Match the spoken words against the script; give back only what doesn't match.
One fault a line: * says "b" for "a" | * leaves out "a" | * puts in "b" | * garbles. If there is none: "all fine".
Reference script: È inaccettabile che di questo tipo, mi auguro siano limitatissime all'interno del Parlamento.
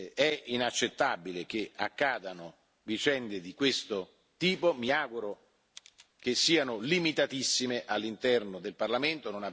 * puts in "accadano vicende"
* puts in "che"